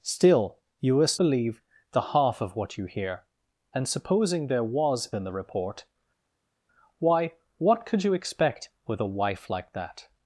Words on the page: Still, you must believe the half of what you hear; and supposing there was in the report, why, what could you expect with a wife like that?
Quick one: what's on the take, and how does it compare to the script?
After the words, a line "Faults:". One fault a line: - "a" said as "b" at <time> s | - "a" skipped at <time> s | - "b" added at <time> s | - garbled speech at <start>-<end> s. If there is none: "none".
Still, you must believe the half of what you hear; and supposing there was in the report, why, what could you expect with a wife like that?
Faults:
none